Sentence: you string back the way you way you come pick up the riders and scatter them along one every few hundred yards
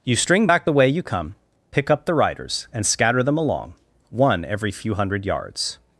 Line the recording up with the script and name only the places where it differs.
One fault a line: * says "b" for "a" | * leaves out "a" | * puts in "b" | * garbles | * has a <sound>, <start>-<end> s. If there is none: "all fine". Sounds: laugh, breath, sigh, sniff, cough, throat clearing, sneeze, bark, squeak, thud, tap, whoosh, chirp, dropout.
* leaves out "way you"